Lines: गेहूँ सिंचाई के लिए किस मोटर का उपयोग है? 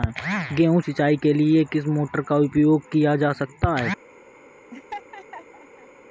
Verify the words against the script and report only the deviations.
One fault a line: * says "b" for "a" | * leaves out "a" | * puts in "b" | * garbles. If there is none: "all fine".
* puts in "किया जा सकता"